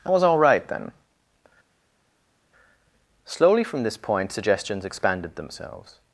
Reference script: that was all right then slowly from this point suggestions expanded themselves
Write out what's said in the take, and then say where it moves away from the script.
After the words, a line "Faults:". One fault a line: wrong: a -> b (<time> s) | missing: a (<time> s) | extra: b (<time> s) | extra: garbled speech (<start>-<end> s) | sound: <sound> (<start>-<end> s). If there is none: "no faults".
i was all right then slowly from this point suggestions expanded themselves
Faults:
wrong: that -> i (0.1 s)